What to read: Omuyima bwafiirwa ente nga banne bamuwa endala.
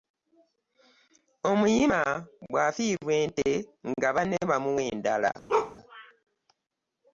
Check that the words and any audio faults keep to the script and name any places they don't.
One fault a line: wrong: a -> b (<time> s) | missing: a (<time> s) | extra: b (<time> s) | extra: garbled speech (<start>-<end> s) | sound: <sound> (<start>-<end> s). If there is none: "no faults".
sound: bark (5.5-5.8 s)